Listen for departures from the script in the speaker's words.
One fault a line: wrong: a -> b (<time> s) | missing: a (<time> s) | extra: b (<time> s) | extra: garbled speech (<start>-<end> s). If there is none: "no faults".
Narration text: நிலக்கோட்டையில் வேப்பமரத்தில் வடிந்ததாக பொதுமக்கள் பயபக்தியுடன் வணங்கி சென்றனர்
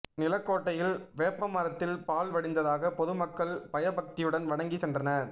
extra: பால் (2.0 s)